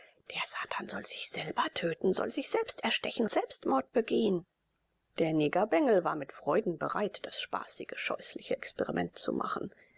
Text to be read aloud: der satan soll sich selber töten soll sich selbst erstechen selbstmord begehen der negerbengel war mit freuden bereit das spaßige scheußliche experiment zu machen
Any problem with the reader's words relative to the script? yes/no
no